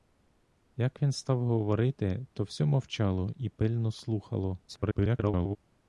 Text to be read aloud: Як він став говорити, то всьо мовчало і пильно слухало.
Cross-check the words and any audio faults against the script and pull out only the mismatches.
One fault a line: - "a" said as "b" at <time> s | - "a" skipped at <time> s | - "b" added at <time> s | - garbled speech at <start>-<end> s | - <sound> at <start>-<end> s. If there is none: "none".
- garbled speech at 4.7-5.6 s